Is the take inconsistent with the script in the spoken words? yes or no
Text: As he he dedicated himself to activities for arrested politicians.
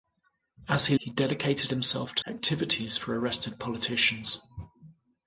no